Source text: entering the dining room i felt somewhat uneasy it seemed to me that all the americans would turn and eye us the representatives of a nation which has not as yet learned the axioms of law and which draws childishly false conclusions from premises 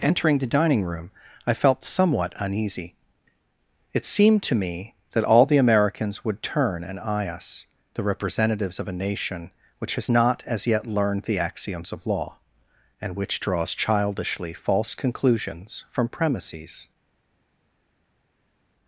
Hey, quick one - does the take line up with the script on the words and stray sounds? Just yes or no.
yes